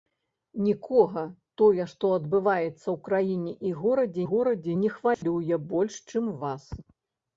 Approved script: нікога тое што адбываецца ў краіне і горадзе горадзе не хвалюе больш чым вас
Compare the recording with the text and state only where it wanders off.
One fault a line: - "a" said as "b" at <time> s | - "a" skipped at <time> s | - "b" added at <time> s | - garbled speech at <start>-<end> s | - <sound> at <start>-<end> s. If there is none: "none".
- dropout at 5.1-5.2 s